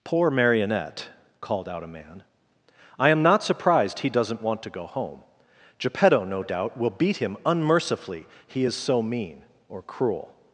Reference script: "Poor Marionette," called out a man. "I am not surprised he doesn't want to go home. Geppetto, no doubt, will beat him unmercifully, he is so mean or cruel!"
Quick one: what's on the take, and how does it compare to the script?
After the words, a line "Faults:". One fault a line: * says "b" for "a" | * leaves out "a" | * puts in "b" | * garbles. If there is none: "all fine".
"Poor Marionette," called out a man. "I am not surprised he doesn't want to go home. Geppetto, no doubt, will beat him unmercifully, he is so mean or cruel!"
Faults:
all fine